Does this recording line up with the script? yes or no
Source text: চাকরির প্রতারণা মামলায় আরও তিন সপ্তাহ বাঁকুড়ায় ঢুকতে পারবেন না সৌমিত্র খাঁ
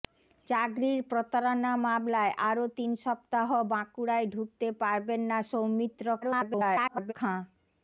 no